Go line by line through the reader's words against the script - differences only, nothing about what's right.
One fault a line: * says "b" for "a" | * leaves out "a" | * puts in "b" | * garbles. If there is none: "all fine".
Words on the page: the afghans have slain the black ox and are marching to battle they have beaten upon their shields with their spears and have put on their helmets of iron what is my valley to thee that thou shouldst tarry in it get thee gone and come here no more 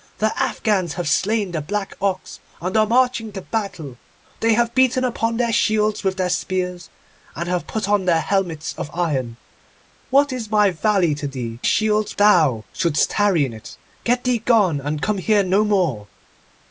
* says "shields" for "that"